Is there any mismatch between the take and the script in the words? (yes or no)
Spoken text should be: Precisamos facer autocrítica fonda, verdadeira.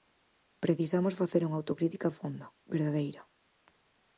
yes